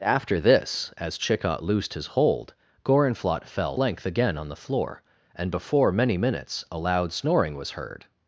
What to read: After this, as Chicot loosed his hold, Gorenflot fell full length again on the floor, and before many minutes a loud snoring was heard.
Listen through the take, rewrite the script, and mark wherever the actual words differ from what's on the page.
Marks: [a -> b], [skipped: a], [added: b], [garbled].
After this, as Chicot loosed his hold, Gorenflot fell [skipped: full] length again on the floor, and before many minutes a loud snoring was heard.